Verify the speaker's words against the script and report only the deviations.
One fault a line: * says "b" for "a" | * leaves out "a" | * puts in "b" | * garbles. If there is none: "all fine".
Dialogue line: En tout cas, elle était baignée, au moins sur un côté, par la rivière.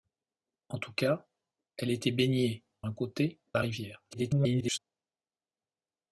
* leaves out "au moins sur"
* leaves out "par"
* garbles